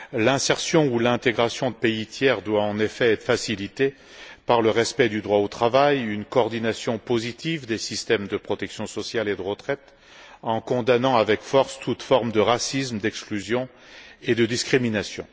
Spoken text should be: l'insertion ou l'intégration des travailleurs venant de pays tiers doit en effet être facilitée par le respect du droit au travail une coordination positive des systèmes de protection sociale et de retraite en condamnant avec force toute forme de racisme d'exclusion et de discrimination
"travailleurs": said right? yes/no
no